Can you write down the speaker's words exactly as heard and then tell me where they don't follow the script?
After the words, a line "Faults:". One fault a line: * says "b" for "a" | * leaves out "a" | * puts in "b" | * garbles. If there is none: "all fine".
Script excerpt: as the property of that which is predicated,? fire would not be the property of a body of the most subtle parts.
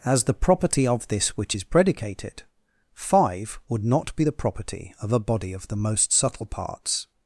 as the property of this which is predicated,? five would not be the property of a body of the most subtle parts.
Faults:
* says "this" for "that"
* says "five" for "fire"